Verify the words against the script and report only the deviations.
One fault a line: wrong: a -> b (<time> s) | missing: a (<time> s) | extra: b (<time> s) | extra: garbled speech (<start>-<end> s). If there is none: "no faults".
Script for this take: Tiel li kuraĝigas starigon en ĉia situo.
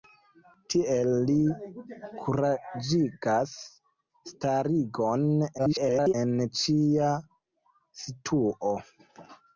extra: garbled speech (5.6-6.1 s)